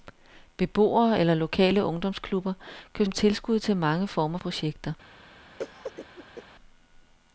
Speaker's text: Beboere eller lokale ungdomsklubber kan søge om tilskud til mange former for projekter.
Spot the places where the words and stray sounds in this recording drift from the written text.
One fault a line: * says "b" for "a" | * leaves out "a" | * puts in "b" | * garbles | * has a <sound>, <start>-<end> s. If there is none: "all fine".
* leaves out "søge"
* leaves out "for"
* has a cough, 5.6-6.4 s